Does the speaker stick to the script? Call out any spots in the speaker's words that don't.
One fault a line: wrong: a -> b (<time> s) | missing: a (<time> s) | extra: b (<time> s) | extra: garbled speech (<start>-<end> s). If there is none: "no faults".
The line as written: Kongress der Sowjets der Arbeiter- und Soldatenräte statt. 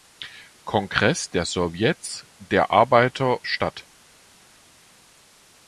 missing: und Soldatenräte (3.4 s)